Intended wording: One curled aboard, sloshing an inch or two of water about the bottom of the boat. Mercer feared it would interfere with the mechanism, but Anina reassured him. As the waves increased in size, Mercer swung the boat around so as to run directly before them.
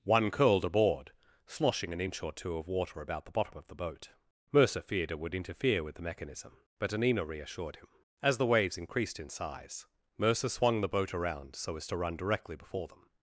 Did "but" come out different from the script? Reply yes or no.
no